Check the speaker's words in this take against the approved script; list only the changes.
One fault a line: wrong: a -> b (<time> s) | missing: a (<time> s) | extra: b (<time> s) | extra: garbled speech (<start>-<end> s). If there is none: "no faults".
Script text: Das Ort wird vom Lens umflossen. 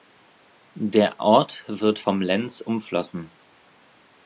wrong: Das -> Der (0.7 s)